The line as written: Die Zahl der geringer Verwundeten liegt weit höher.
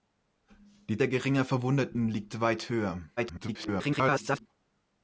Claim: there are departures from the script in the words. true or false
true